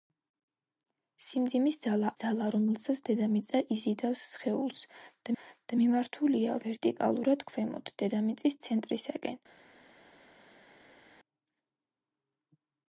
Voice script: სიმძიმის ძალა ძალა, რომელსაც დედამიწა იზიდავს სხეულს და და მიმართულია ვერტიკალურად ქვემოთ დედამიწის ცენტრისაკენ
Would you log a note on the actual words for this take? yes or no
no